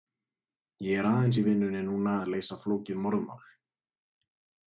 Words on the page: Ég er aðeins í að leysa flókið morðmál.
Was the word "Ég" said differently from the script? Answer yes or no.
no